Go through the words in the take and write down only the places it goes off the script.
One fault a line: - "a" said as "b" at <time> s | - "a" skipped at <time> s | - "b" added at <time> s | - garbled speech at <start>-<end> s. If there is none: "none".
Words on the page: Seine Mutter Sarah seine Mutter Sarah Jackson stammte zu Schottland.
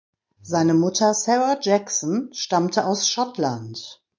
- "seine Mutter Sarah" skipped at 1.6 s
- "zu" said as "aus" at 2.9 s